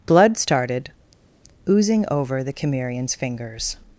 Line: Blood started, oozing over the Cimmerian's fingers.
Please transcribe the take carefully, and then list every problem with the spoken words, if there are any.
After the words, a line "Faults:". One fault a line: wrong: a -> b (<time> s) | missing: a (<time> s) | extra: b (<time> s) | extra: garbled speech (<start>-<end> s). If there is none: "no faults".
Blood started, oozing over the Cimmerian's fingers.
Faults:
no faults